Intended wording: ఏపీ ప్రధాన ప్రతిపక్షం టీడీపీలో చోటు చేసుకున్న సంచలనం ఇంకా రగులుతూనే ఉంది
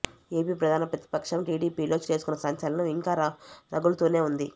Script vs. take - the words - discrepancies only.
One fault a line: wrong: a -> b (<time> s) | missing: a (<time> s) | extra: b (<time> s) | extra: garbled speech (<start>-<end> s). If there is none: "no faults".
missing: చోటు (2.0 s)